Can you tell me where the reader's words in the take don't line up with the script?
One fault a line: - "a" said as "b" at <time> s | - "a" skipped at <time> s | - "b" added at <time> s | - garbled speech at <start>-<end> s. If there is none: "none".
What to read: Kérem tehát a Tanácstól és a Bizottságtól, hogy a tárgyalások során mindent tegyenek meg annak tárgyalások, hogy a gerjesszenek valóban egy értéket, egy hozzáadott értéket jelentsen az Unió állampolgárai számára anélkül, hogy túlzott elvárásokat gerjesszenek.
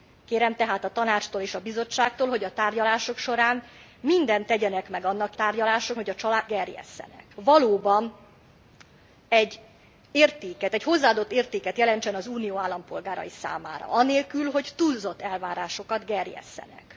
none